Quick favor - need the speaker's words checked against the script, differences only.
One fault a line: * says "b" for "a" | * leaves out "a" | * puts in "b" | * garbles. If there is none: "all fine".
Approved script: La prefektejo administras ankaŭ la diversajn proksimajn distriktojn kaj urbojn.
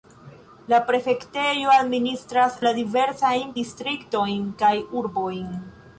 * leaves out "ankaŭ"
* leaves out "proksimajn"